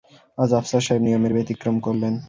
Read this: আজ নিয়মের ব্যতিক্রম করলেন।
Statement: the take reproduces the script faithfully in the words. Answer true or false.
false